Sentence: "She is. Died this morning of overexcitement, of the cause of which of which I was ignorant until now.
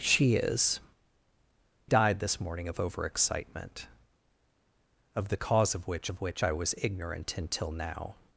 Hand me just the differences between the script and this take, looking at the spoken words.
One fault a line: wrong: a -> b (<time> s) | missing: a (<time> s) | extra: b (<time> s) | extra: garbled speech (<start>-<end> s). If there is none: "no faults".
no faults